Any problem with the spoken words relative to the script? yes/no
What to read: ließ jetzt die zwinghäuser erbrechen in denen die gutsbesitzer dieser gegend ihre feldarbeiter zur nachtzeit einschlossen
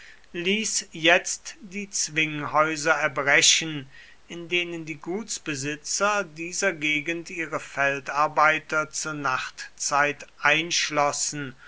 no